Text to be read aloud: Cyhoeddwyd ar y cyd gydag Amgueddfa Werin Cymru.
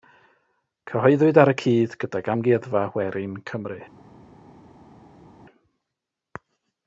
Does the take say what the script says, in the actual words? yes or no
yes